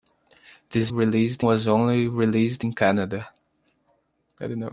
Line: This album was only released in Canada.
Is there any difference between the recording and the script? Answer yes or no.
yes